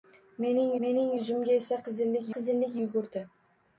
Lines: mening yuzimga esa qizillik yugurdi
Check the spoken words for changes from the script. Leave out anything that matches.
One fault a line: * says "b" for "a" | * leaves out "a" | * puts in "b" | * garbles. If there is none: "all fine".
* puts in "mening"
* puts in "qizillik"